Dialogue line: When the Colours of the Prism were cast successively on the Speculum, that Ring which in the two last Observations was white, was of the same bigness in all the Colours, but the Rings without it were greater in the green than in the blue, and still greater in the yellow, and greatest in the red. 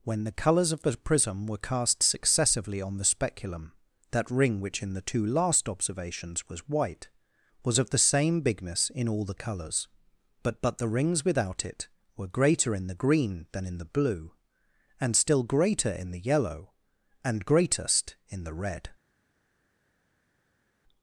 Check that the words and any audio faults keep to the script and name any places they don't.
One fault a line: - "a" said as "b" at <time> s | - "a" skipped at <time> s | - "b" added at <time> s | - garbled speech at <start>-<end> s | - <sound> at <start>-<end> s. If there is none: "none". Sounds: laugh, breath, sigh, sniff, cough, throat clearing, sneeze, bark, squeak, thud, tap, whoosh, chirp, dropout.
- "but" added at 10.6 s